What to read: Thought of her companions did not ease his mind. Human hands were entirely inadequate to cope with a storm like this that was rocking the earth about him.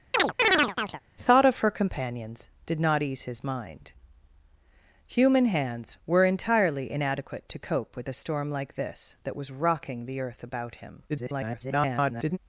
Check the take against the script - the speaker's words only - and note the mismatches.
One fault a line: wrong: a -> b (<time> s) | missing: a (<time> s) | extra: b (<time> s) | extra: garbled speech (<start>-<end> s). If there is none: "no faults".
extra: garbled speech (11.1-12.4 s)